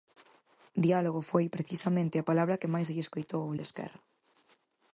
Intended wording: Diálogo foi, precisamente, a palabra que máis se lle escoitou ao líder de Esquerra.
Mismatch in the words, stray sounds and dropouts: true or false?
true